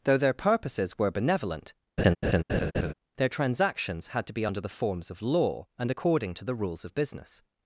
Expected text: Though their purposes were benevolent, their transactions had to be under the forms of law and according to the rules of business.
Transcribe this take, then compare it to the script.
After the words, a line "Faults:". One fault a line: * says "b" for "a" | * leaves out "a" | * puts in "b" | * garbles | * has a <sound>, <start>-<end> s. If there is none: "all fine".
Though their purposes were benevolent, their transactions had to be under the forms of law and according to the rules of business.
Faults:
* has a laugh, 2.0-2.9 s